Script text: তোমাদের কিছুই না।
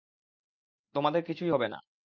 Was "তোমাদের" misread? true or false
false